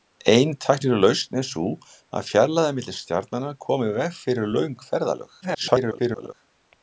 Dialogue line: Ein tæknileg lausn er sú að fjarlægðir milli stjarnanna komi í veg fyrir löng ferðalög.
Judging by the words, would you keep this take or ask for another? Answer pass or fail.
fail